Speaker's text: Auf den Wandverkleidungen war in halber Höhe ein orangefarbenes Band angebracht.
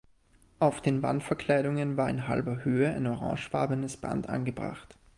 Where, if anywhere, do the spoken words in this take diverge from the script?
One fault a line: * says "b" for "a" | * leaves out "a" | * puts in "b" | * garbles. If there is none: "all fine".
all fine